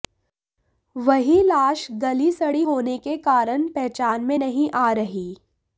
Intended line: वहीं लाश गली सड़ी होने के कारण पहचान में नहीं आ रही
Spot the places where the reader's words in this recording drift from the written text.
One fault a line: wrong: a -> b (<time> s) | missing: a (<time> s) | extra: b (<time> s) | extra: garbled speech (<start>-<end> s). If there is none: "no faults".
no faults